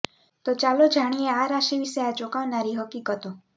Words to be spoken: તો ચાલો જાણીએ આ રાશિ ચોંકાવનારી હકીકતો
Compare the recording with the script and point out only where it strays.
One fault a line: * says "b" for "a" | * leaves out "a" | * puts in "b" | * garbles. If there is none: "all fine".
* puts in "વિશે આ"